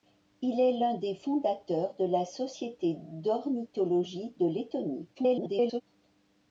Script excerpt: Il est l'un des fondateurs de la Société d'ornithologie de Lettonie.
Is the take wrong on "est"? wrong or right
right